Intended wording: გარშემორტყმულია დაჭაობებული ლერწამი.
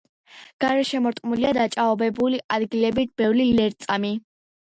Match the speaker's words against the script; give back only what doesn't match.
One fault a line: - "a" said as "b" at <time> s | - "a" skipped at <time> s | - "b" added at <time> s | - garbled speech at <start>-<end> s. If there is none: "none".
- "ადგილებით ბევრია" added at 2.6 s